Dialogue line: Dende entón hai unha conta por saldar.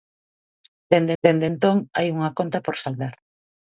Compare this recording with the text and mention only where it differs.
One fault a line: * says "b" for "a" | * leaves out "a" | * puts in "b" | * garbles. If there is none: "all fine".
* puts in "dende"